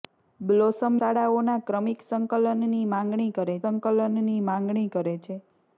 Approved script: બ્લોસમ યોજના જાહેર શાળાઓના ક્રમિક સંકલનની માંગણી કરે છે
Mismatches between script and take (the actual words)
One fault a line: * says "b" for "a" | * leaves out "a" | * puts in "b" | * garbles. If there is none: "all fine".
* says "શાળાઓના ક્રમિક સંકલનની માંગણી કરે" for "યોજના જાહેર શાળાઓના ક્રમિક"